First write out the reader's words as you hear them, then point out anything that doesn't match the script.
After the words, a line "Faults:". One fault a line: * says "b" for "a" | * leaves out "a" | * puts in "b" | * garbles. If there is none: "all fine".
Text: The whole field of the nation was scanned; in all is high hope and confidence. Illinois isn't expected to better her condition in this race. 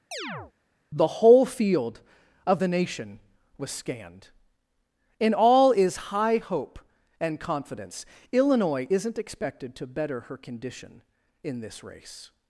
The whole field of the nation was scanned; in all is high hope and confidence. Illinois isn't expected to better her condition in this race.
Faults:
all fine